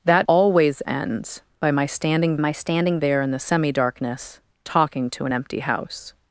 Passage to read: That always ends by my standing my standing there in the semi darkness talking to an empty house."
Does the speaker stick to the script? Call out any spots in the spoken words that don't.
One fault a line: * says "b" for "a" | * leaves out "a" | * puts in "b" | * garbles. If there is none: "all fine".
all fine